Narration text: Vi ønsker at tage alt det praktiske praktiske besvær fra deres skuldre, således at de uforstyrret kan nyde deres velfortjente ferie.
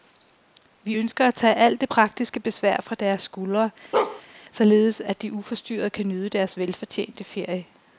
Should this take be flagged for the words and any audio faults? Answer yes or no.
yes